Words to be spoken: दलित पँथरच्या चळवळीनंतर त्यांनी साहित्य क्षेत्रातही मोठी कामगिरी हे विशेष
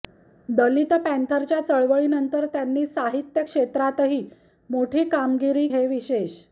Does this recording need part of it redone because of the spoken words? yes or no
no